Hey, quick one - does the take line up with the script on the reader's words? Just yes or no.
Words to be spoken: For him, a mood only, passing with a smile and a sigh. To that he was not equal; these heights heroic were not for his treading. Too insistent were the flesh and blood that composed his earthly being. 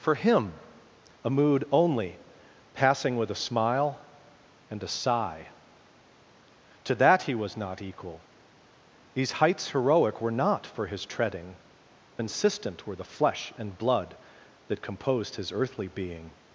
no